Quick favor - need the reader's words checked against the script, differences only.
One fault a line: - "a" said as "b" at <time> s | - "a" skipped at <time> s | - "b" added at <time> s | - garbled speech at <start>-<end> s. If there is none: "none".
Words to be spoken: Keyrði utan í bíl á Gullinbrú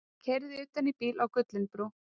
none